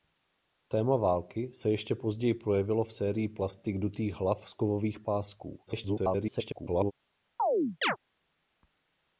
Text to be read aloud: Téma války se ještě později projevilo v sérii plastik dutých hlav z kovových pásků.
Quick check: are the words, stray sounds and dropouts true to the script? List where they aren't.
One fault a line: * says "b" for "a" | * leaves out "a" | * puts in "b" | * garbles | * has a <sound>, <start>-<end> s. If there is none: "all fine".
* garbles
* has a chirp, 7.4-8.0 s